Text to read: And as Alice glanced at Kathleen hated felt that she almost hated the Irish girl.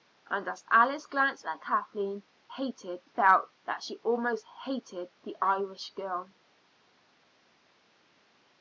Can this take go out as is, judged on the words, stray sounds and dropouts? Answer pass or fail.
pass